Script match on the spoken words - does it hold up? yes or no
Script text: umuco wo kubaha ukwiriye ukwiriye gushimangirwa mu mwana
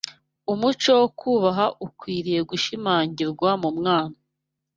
no